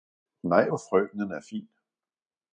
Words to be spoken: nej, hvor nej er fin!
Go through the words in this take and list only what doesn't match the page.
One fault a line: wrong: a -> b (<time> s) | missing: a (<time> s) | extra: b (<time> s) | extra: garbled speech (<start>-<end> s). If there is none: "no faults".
wrong: nej -> frøkenen (0.9 s)